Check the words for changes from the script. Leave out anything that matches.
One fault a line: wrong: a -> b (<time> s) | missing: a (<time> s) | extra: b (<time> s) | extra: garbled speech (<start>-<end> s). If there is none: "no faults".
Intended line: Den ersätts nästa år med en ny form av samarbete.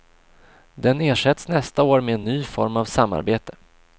no faults